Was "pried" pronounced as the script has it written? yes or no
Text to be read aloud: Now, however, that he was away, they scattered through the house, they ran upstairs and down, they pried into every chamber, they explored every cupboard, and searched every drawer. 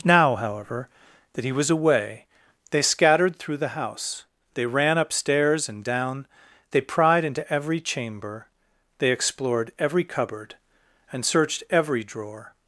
yes